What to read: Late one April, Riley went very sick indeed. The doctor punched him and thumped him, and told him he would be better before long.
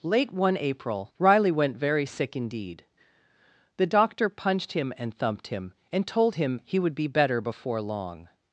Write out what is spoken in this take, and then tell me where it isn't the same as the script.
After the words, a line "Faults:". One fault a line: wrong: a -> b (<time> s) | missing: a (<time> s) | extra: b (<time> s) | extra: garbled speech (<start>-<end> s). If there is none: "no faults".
Late one April, Riley went very sick indeed. The doctor punched him and thumped him, and told him he would be better before long.
Faults:
no faults